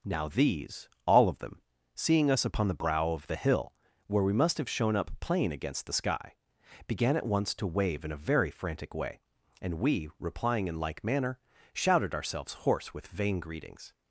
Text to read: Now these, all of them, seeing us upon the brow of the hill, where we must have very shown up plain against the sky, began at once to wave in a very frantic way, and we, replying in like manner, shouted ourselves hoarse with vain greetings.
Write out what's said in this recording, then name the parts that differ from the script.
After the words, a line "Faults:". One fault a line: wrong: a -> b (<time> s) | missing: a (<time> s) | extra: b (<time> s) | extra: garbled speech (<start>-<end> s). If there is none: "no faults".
Now these, all of them, seeing us upon the brow of the hill, where we must have shown up plain against the sky, began at once to wave in a very frantic way, and we, replying in like manner, shouted ourselves hoarse with vain greetings.
Faults:
missing: very (4.7 s)